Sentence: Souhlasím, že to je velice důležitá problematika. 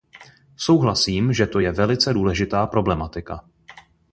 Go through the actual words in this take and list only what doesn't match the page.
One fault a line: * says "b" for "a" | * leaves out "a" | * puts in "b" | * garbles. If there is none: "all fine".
all fine